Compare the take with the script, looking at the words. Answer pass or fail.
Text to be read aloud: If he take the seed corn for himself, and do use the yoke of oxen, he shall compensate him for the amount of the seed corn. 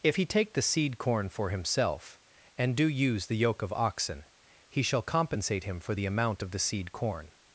pass